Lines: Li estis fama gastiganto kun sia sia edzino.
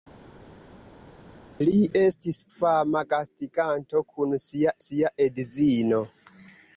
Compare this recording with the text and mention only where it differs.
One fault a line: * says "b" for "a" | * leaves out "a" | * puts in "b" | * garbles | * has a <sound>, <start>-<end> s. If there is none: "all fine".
all fine